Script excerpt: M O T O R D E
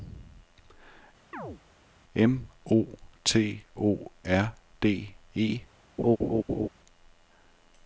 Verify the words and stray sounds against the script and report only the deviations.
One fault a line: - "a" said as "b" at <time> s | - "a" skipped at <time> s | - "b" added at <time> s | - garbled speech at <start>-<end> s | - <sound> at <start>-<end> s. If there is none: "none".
- chirp at 1.3-1.6 s
- laugh at 6.0-6.7 s